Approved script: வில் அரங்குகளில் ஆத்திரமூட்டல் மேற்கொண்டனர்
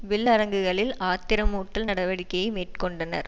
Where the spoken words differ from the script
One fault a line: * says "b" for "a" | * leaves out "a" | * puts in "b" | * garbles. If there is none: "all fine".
* puts in "நடவடிக்கையை"